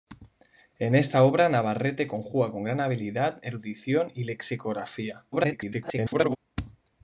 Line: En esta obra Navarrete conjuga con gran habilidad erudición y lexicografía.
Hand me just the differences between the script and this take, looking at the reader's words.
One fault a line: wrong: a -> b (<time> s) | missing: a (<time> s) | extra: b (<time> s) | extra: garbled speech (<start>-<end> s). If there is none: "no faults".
extra: garbled speech (5.3-6.4 s)